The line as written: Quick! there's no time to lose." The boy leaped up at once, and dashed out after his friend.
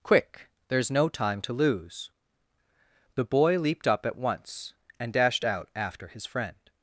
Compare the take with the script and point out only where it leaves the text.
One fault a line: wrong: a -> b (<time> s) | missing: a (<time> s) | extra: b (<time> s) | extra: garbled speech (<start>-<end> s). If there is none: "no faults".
no faults